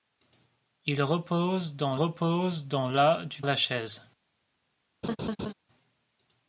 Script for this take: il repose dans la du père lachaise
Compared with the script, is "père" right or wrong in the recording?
wrong